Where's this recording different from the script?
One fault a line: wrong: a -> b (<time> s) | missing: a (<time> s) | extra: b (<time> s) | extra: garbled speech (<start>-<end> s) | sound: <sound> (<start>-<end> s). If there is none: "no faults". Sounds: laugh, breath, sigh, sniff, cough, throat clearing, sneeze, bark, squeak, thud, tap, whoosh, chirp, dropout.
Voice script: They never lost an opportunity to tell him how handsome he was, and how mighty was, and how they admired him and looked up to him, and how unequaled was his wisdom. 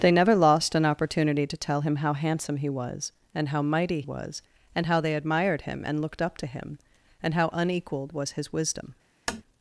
sound: tap (9.3-9.4 s)